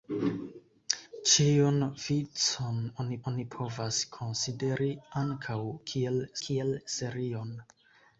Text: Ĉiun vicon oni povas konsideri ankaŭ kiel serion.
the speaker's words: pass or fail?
fail